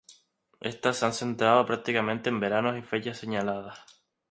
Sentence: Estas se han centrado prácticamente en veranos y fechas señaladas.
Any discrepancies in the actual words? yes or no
no